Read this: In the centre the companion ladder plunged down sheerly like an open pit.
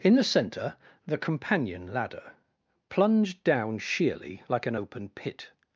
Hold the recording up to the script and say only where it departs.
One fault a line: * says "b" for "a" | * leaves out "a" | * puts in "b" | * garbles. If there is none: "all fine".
all fine